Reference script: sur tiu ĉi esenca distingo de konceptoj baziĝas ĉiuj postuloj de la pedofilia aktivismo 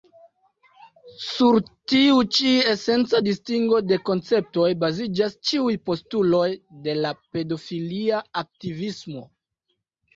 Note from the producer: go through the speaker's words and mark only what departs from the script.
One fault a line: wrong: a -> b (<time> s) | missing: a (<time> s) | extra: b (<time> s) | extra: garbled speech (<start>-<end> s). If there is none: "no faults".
no faults